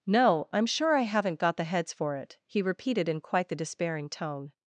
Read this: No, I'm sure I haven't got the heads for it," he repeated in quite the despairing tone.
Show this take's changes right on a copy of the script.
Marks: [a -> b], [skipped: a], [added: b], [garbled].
No, I'm sure I haven't got the heads for it," he repeated in quite the despairing tone.